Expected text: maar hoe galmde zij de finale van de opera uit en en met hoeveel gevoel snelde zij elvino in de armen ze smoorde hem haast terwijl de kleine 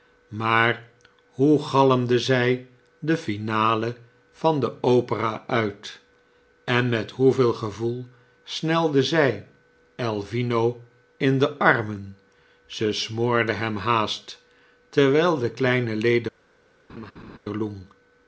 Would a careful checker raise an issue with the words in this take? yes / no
yes